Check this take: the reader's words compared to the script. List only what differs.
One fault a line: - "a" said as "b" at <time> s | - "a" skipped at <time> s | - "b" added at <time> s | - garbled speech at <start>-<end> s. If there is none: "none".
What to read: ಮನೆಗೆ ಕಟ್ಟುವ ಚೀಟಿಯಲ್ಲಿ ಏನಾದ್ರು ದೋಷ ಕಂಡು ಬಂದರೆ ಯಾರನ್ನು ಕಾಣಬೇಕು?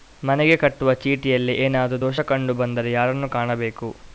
none